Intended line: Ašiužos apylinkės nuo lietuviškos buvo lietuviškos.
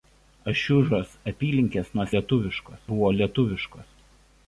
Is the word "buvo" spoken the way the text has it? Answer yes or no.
yes